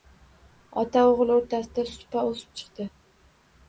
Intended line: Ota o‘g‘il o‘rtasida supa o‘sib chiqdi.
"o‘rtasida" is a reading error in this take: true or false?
false